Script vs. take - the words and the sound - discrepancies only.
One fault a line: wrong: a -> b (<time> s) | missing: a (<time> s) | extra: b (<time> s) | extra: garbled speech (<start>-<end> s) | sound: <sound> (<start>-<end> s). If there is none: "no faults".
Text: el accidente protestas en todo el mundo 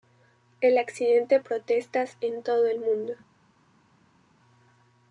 no faults